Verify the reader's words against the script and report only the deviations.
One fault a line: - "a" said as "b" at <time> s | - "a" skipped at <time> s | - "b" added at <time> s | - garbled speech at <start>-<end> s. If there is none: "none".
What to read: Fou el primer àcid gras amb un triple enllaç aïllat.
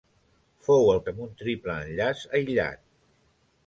- "primer àcid gras" skipped at 1.0 s